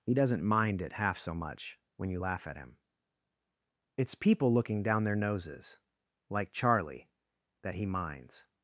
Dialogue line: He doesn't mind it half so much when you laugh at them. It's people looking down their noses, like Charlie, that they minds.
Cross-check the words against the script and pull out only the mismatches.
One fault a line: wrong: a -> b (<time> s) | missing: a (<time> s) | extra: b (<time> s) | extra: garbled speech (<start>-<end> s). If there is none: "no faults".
wrong: them -> him (2.6 s)
wrong: they -> he (7.7 s)